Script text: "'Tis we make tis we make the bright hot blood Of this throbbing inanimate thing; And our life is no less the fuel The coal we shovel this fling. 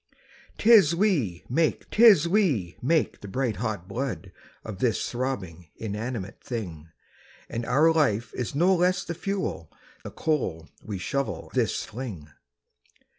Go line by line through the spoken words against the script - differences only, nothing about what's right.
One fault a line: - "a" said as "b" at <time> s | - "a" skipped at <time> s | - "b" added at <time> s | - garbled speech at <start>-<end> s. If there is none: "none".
none